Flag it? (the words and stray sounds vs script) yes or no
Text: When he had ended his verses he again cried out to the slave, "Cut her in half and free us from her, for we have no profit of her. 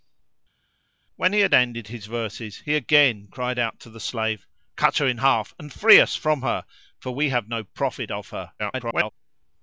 yes